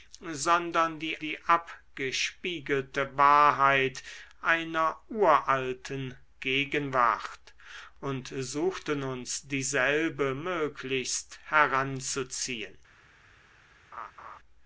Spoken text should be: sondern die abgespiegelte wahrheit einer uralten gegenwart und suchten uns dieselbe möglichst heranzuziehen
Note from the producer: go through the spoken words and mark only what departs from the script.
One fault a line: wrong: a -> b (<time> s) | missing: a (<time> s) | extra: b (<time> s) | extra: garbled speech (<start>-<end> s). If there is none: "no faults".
extra: die (1.2 s)